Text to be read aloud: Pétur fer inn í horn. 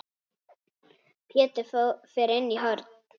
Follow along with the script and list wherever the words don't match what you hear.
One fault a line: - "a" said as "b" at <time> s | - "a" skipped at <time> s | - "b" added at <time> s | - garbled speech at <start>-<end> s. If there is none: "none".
none